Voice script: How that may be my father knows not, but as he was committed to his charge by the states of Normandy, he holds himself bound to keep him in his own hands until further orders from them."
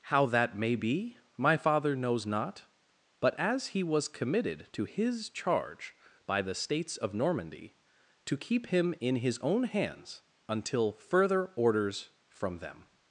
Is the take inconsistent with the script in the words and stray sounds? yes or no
yes